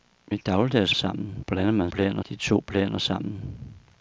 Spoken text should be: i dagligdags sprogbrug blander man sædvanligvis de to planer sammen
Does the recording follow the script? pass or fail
fail